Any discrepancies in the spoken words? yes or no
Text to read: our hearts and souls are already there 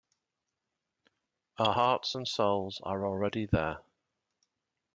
no